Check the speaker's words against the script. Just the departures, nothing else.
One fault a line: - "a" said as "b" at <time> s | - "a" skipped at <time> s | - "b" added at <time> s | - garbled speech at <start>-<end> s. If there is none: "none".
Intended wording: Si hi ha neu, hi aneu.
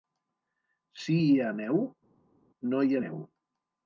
- "no" added at 2.7 s